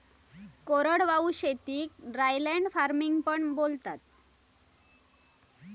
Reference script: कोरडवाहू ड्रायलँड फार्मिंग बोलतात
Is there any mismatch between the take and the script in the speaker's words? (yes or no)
yes